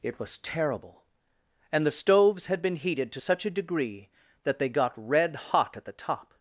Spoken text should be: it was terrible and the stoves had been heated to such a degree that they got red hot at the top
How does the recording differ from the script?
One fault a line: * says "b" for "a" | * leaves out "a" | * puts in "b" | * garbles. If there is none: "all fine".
all fine